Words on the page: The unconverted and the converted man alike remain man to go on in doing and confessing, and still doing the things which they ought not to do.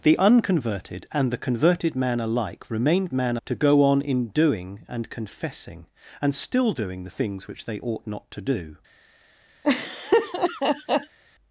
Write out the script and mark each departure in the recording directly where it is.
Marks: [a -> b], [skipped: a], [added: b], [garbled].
The unconverted and the converted man alike remain man to go on in doing and confessing, and still doing the things which they ought not to do.